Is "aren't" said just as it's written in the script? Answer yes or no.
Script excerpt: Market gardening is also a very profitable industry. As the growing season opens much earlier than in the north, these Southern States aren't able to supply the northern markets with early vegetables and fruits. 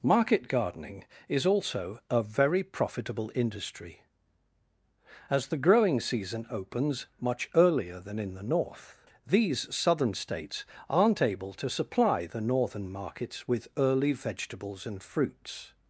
yes